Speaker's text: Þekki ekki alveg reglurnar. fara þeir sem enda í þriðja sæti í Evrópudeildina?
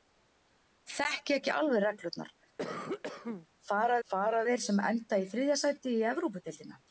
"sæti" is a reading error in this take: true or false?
false